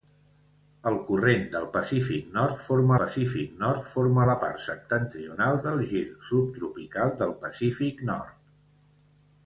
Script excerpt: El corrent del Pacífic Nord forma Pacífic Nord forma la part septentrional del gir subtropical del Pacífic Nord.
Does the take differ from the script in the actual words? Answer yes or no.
no